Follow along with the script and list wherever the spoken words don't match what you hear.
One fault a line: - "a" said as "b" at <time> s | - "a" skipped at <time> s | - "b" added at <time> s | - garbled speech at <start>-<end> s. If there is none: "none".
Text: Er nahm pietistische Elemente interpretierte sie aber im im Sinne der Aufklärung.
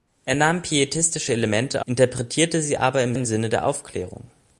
none